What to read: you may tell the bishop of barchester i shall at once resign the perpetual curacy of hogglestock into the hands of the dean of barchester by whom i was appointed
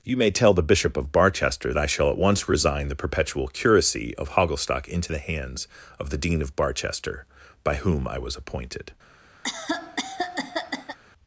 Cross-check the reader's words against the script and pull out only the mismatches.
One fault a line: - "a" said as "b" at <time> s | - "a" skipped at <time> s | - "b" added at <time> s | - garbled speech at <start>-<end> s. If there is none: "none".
none